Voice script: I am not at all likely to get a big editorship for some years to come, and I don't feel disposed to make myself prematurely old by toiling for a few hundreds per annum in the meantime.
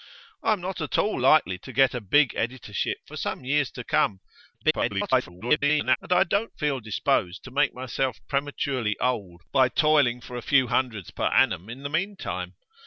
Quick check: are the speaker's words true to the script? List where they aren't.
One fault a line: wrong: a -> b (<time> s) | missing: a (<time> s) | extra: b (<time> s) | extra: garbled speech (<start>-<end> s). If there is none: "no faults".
extra: garbled speech (4.5-6.0 s)